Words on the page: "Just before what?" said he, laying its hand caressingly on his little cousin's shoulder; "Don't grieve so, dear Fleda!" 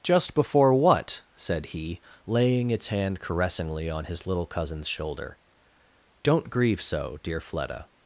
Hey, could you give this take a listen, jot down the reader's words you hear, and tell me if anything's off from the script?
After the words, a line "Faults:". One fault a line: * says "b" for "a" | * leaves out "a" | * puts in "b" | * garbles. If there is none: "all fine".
"Just before what?" said he, laying its hand caressingly on his little cousin's shoulder; "Don't grieve so, dear Fleda!"
Faults:
all fine